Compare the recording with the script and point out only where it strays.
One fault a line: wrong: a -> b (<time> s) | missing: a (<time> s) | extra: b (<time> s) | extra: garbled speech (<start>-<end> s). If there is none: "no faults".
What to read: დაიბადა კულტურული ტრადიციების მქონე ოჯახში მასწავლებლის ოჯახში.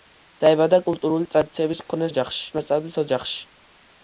no faults